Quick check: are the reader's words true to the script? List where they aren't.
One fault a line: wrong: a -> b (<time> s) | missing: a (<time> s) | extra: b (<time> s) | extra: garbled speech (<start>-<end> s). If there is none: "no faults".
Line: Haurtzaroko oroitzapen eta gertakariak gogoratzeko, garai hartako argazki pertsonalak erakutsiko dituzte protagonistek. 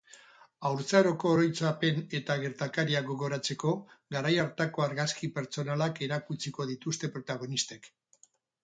no faults